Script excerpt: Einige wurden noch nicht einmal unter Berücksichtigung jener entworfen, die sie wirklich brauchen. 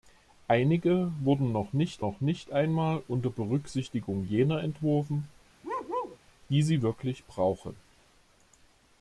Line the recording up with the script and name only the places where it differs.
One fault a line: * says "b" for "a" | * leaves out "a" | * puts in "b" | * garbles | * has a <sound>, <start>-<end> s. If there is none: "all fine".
* puts in "noch nicht"
* has a bark, 5.6-6.2 s